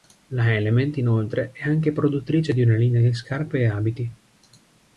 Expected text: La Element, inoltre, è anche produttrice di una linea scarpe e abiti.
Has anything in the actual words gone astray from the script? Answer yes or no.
yes